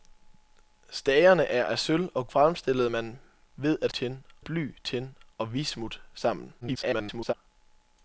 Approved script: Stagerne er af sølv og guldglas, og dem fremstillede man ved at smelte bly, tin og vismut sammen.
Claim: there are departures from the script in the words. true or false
true